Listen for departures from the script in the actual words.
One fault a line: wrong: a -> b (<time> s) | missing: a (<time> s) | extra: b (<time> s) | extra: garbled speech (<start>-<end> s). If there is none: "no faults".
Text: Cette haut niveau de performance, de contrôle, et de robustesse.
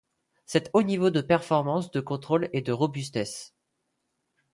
no faults